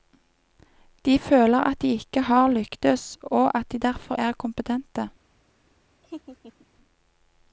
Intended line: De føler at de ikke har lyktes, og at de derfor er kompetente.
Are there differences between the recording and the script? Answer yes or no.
no